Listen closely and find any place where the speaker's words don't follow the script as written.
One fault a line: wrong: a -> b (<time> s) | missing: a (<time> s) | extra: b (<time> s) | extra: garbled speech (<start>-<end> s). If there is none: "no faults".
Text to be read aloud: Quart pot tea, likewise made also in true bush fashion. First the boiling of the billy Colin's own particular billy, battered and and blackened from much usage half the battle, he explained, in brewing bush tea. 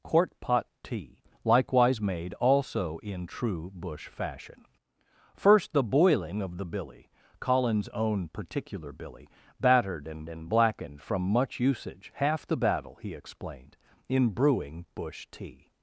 no faults